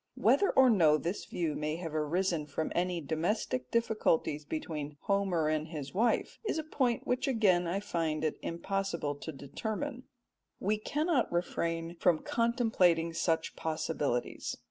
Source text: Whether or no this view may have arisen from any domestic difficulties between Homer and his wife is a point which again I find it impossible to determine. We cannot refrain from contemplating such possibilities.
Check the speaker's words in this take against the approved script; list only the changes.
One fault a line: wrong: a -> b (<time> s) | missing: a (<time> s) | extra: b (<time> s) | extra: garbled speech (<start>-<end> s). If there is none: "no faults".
no faults